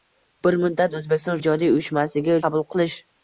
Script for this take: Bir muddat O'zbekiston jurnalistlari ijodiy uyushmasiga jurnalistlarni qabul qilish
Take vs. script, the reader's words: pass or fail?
fail